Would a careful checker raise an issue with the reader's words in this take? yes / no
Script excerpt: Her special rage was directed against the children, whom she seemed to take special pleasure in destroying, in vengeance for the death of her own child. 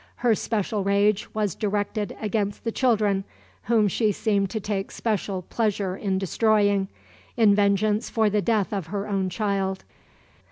no